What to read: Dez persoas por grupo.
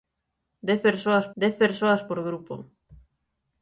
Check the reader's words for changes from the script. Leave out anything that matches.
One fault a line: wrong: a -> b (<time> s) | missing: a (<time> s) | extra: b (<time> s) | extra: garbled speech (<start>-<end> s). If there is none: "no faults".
extra: dez persoas (1.4 s)